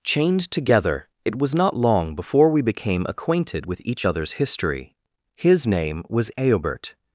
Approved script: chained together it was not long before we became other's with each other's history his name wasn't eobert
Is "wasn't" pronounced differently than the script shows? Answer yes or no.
yes